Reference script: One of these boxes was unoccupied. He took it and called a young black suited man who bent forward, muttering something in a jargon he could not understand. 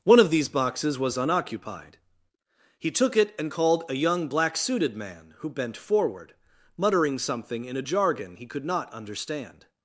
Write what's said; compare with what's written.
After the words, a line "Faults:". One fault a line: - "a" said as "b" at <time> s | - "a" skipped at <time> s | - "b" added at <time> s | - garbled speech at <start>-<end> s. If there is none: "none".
One of these boxes was unoccupied. He took it and called a young black suited man who bent forward, muttering something in a jargon he could not understand.
Faults:
none